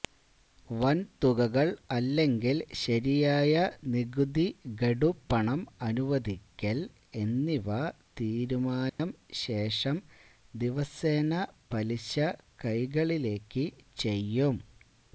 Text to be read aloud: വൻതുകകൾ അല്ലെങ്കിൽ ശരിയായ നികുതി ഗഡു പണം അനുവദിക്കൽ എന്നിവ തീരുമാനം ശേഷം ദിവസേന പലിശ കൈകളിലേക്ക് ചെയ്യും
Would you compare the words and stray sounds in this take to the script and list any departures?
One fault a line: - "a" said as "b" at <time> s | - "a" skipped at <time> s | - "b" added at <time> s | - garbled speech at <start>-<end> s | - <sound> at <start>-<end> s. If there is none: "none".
- dropout at 8.9-9.0 s